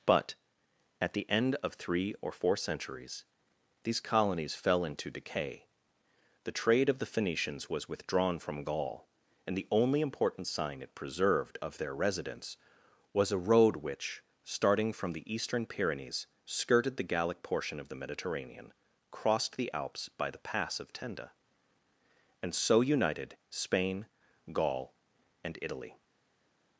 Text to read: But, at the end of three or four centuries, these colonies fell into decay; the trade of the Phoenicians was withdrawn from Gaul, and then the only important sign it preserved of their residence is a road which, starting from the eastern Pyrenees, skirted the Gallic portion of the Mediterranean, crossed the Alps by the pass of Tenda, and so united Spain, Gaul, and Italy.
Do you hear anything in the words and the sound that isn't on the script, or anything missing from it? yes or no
yes